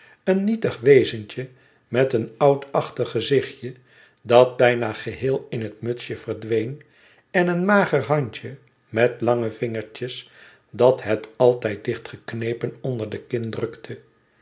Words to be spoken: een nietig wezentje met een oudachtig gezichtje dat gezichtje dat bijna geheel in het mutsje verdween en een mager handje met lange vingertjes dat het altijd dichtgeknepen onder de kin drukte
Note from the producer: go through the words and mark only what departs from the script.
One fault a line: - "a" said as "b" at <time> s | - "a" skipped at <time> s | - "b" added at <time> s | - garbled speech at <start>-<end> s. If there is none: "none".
- "gezichtje dat" skipped at 4.6 s